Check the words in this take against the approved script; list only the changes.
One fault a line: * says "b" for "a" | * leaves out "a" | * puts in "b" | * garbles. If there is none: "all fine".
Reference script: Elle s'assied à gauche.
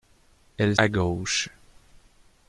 * leaves out "s'assied"